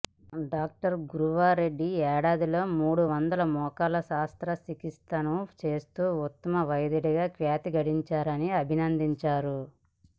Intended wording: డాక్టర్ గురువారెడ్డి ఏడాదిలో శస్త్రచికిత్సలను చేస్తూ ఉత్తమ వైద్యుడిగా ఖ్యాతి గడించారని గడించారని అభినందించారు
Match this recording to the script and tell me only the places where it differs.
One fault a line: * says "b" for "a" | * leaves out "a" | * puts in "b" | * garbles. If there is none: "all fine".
* puts in "మూడు వందల మోకాళ్ల"
* leaves out "గడించారని"